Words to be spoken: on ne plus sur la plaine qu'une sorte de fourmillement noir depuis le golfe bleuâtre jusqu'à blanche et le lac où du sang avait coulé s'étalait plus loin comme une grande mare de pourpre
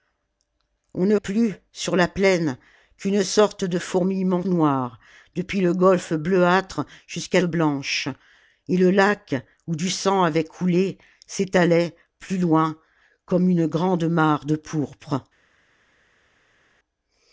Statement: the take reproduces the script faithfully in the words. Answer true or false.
true